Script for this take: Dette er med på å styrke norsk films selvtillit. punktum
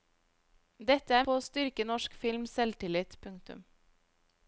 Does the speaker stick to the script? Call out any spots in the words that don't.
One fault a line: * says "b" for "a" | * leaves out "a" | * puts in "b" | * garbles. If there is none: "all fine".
* leaves out "med"